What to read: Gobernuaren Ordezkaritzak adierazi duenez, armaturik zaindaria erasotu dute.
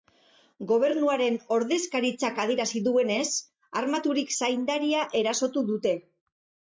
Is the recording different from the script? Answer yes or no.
no